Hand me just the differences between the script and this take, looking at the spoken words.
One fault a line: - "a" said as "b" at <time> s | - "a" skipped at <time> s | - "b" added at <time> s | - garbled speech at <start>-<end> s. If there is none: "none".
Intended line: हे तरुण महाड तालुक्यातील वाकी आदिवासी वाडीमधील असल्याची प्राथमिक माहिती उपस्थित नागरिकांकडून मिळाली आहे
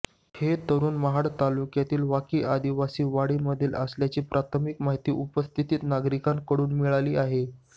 none